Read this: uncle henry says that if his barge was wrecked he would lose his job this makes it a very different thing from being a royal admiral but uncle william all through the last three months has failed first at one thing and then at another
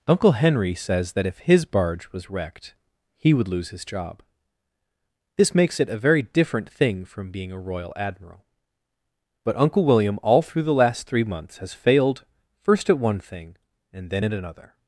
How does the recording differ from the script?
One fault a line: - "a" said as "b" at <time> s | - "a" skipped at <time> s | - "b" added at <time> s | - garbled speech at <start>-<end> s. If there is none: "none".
none